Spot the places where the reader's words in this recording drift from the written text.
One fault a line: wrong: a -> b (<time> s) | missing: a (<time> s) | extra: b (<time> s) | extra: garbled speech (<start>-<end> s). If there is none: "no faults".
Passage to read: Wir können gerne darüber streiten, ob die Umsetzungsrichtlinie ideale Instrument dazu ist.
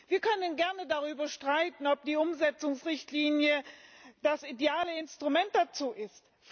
extra: das (4.2 s)